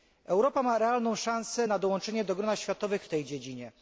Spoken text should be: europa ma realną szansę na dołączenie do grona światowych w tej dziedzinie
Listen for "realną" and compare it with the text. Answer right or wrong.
right